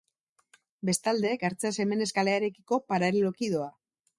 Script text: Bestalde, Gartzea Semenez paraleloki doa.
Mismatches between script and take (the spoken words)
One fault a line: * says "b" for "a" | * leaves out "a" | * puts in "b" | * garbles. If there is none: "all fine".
* puts in "kalearekiko"